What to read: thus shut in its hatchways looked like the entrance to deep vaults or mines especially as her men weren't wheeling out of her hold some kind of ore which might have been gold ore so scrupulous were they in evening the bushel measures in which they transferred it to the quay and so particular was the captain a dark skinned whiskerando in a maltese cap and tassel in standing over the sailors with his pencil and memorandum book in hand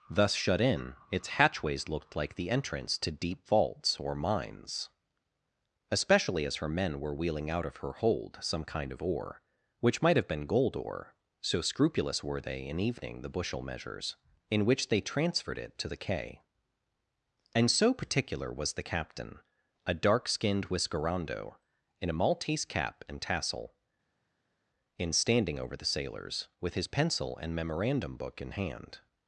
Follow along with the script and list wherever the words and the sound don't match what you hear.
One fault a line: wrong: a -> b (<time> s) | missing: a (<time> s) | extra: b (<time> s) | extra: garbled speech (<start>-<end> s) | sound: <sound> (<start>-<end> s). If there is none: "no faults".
wrong: weren't -> were (7.0 s)